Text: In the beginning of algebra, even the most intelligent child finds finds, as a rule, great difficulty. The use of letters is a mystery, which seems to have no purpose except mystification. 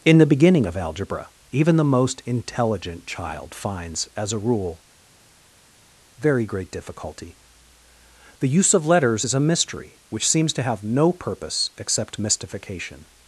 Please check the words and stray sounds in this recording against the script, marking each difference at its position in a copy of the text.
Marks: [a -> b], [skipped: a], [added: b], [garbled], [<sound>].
In the beginning of algebra, even the most intelligent child finds [skipped: finds,] as a rule, [added: very] great difficulty. The use of letters is a mystery, which seems to have no purpose except mystification.